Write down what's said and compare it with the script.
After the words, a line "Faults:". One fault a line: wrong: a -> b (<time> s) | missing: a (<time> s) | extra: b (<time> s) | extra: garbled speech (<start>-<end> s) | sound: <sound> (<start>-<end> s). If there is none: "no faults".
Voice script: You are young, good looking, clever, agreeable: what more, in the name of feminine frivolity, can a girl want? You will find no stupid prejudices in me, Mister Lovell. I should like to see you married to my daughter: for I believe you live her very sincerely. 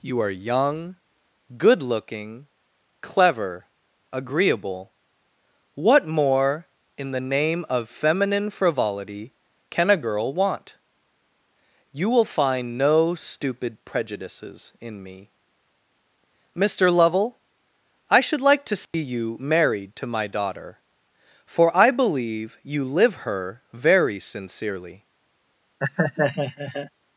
You are young, good looking, clever, agreeable: what more, in the name of feminine frivolity, can a girl want? You will find no stupid prejudices in me, Mister Lovell. I should like to see you married to my daughter: for I believe you live her very sincerely.
Faults:
sound: dropout (18.8-18.9 s)
sound: laugh (25.8-26.9 s)